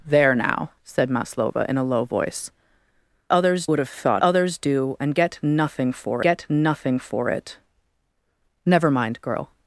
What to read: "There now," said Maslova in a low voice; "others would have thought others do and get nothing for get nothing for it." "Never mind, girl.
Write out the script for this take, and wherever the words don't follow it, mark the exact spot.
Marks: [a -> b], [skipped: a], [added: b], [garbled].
"There now," said Maslova in a low voice; "others would have thought others do and get nothing for get nothing for it." "Never mind, girl.